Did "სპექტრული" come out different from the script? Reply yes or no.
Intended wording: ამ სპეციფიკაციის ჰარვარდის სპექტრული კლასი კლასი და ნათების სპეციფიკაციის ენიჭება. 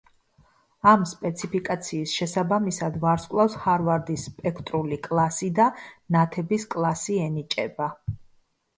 no